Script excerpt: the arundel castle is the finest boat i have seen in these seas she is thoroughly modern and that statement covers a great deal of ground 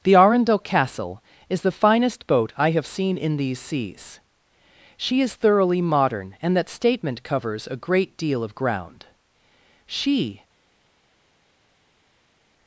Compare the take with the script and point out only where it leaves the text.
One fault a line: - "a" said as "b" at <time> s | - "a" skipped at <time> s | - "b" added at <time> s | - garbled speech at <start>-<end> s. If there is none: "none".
- "she" added at 9.9 s